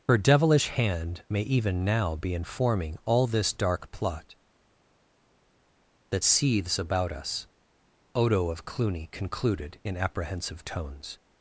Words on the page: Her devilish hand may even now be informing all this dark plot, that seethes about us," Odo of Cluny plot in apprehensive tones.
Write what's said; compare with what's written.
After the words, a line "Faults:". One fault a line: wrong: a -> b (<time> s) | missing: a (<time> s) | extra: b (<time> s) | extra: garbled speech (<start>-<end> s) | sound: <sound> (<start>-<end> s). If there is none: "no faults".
Her devilish hand may even now be informing all this dark plot, that seethes about us," Odo of Cluny concluded in apprehensive tones.
Faults:
wrong: plot -> concluded (9.1 s)